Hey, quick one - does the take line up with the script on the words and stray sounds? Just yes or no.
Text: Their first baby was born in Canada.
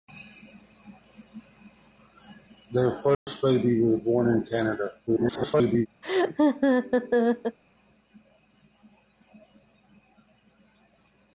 no